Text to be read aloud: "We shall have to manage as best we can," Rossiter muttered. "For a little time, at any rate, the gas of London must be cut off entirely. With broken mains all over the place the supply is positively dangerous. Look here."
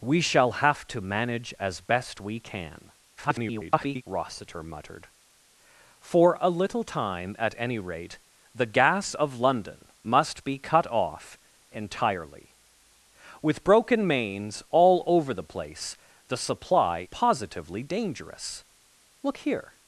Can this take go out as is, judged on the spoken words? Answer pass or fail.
fail